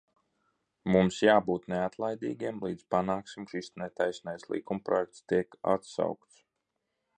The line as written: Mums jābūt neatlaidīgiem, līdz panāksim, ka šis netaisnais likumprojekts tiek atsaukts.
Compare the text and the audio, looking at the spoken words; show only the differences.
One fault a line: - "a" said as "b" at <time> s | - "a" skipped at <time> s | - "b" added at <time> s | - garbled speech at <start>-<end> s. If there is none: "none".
- "ka" skipped at 3.5 s